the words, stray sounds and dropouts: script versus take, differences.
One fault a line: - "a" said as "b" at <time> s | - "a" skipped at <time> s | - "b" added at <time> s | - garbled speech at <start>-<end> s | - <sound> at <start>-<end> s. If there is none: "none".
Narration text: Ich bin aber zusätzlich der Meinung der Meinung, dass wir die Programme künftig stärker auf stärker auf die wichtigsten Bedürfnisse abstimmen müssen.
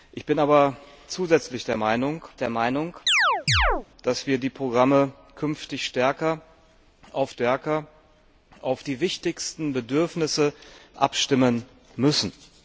- chirp at 3.1-3.9 s